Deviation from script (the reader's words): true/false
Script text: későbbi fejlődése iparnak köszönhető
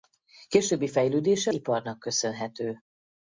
false